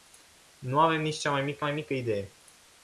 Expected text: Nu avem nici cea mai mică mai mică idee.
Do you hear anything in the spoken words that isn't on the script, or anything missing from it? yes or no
no